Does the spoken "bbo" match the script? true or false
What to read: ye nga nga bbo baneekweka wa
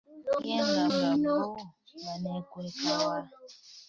true